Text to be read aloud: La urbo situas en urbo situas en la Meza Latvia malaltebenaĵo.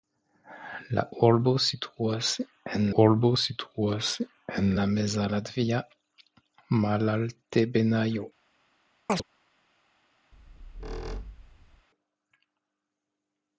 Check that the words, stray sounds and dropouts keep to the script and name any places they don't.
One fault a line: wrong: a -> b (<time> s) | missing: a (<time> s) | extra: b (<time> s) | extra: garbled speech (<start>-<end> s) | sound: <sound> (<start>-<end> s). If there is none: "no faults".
sound: chirp (9.1-9.2 s)
sound: squeak (10.3-11.9 s)